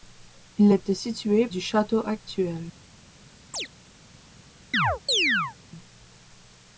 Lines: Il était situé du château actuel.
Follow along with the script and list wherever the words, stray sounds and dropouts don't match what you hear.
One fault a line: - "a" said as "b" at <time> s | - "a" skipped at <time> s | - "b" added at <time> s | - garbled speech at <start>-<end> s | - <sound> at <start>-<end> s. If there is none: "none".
- chirp at 3.5-3.7 s
- chirp at 4.7-5.6 s